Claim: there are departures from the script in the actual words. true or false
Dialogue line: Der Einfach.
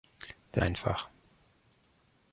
false